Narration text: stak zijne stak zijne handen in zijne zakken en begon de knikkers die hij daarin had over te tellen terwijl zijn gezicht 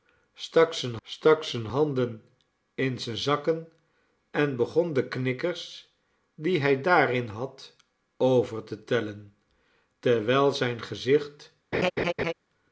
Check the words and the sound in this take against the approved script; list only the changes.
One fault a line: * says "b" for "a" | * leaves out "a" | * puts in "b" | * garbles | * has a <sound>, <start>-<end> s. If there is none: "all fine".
* has a laugh, 11.7-12.3 s